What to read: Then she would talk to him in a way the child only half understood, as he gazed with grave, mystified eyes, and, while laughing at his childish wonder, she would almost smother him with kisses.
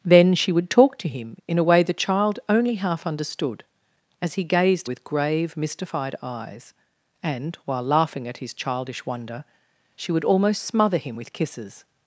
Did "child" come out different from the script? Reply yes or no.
no